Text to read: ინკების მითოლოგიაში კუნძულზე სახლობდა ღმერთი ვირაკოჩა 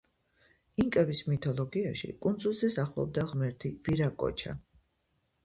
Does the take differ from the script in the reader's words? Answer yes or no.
no